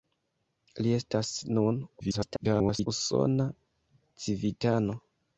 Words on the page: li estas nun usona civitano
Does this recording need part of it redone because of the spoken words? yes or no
yes